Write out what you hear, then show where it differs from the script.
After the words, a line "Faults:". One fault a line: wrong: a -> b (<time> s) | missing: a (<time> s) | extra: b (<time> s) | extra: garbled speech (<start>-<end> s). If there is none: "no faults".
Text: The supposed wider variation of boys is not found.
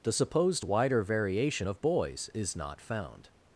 The supposed wider variation of boys is not found.
Faults:
no faults